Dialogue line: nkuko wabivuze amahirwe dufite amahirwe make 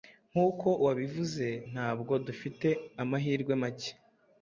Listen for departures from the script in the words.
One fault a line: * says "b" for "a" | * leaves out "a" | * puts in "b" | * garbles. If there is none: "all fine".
* says "ntabwo" for "amahirwe"